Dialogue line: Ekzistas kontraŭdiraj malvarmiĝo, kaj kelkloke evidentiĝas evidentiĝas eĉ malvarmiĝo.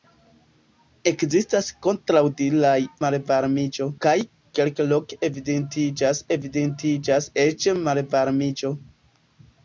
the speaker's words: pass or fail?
pass